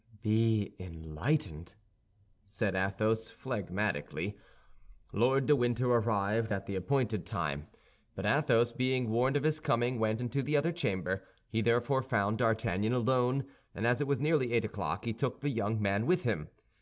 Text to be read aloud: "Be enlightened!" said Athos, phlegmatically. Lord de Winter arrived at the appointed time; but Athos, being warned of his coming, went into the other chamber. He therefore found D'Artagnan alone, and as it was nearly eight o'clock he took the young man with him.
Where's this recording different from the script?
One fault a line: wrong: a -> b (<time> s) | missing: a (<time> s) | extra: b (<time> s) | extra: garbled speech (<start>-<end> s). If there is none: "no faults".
no faults